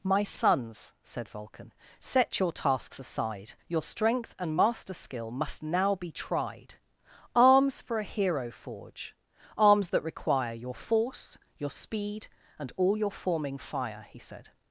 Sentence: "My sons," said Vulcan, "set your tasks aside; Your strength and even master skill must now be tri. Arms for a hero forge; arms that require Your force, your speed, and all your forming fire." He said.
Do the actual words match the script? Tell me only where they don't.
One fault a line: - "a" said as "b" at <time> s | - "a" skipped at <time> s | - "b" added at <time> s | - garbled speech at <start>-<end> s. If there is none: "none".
- "even" skipped at 4.6 s
- "tri" said as "tried" at 6.1 s